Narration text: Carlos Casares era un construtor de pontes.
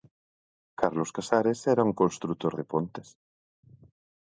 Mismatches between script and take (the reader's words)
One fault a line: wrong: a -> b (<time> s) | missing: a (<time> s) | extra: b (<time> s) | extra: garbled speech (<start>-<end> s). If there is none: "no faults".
no faults